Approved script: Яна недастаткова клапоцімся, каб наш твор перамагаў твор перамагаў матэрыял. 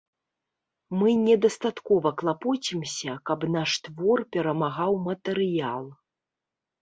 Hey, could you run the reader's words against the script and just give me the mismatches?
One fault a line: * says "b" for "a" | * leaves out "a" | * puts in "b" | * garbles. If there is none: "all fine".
* says "Мы" for "Яна"
* leaves out "твор перамагаў"